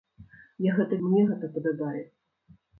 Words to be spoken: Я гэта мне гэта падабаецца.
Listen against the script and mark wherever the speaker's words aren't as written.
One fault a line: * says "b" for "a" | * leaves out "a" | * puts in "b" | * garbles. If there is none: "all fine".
all fine